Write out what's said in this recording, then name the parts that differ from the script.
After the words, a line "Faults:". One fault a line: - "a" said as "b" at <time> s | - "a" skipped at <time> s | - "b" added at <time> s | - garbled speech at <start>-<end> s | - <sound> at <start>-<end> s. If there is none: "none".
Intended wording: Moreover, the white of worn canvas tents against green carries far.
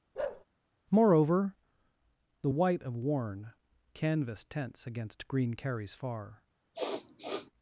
Moreover, the white of worn canvas tents against green carries far.
Faults:
- bark at 0.1-0.4 s
- sniff at 6.7-7.5 s